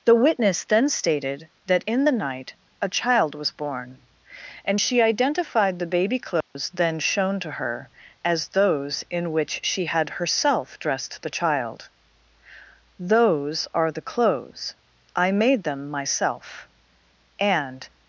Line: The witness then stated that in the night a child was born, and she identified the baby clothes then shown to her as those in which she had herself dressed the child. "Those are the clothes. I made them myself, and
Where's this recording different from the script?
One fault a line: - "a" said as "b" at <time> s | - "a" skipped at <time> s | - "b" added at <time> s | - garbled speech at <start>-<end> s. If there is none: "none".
none